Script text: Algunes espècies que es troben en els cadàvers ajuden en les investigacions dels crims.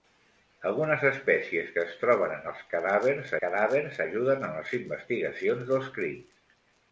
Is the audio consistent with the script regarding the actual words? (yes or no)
no